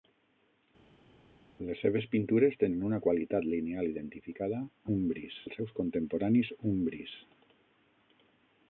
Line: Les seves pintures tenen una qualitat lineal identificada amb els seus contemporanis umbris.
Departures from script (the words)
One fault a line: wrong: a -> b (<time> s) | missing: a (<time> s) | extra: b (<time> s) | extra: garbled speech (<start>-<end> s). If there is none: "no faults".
wrong: amb -> umbris (5.0 s)